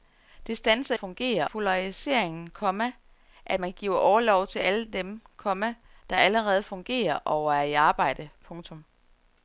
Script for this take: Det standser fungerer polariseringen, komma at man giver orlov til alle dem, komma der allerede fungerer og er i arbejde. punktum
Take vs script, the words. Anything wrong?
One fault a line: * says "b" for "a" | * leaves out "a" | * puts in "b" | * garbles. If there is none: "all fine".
all fine